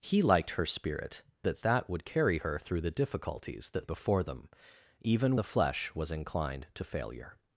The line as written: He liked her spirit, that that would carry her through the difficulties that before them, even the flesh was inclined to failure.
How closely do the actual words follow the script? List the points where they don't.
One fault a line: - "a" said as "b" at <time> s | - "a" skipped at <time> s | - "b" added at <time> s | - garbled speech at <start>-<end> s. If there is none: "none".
none